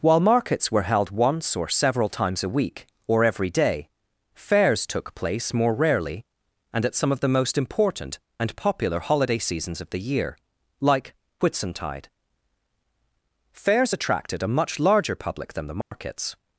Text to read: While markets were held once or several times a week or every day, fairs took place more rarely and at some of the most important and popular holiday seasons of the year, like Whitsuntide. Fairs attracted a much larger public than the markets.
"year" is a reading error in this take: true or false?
false